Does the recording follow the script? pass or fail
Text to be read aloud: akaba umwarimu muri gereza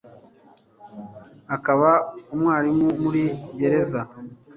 pass